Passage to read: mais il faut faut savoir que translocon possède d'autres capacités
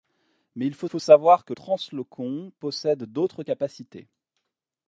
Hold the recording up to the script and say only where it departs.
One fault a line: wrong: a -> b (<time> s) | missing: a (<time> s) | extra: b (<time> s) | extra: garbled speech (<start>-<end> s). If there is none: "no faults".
no faults